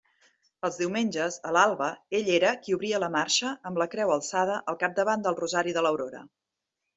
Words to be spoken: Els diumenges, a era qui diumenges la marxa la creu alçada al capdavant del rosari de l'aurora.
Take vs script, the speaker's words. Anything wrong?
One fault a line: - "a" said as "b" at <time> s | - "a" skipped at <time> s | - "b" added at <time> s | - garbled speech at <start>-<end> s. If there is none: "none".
- "l'alba ell" added at 1.6 s
- "diumenges" said as "obria" at 2.8 s
- "amb" added at 3.7 s